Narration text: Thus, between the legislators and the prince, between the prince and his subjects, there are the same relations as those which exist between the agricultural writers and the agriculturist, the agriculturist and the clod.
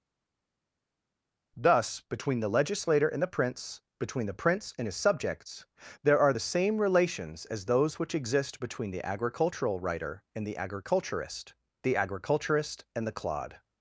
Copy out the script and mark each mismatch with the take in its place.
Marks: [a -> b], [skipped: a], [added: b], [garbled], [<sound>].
Thus, between the [legislators -> legislator] and the prince, between the prince and his subjects, there are the same relations as those which exist between the agricultural [writers -> writer] and the agriculturist, the agriculturist and the clod.